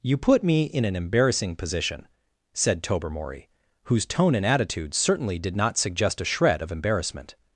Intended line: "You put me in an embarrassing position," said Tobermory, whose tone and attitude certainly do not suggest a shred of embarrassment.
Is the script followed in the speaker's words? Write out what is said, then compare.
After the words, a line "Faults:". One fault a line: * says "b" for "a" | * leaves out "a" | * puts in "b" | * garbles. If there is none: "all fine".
"You put me in an embarrassing position," said Tobermory, whose tone and attitude certainly did not suggest a shred of embarrassment.
Faults:
* says "did" for "do"